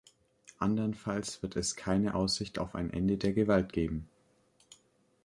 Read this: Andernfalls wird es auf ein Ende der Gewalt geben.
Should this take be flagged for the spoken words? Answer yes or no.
yes